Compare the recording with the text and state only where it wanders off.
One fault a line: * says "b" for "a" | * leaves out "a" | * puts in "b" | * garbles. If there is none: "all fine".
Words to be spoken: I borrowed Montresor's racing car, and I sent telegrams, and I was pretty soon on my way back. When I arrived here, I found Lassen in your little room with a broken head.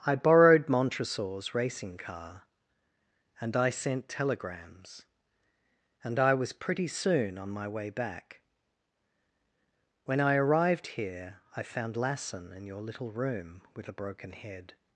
all fine